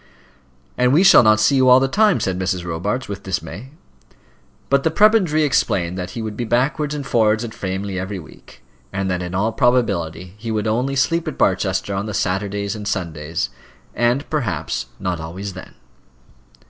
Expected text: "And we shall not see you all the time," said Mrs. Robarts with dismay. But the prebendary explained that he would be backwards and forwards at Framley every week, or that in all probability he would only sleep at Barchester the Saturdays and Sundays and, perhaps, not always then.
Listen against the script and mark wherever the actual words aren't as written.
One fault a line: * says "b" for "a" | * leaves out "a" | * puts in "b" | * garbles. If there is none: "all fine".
* says "and" for "or"
* puts in "on"